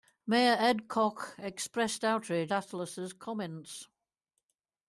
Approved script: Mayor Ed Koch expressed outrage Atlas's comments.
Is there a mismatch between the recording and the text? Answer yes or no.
no